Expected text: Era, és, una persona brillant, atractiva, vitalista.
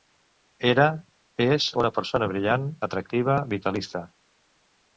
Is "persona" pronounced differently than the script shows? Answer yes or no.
no